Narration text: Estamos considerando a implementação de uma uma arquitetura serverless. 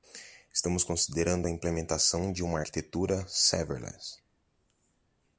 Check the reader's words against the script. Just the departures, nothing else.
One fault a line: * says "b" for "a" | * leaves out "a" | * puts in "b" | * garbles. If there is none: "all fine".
* leaves out "uma"